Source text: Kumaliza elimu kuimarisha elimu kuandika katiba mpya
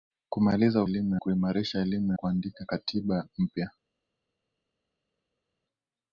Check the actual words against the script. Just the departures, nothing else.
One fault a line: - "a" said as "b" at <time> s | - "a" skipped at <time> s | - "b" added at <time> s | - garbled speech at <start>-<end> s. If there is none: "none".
none